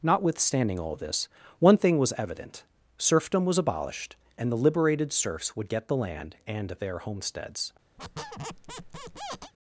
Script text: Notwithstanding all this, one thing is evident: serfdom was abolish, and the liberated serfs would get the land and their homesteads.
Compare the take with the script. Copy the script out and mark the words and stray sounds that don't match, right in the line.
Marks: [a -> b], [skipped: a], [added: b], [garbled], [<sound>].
Notwithstanding all this, one thing [is -> was] evident: serfdom was [abolish, -> abolished] and the liberated serfs would get the land and their homesteads. [squeak]